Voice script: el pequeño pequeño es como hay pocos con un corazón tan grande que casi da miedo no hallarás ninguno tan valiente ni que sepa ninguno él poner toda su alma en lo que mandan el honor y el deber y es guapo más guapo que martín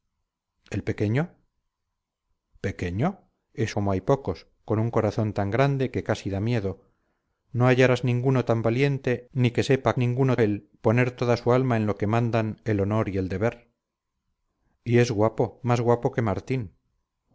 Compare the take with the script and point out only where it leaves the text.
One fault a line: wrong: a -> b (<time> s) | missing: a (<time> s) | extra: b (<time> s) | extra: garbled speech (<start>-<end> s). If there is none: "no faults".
no faults